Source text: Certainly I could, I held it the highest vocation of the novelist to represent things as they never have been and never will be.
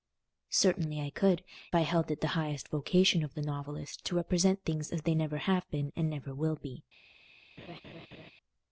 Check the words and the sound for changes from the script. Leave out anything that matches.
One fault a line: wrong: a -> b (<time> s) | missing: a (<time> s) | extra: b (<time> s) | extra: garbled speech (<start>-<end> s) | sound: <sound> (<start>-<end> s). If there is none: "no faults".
sound: laugh (7.6-8.3 s)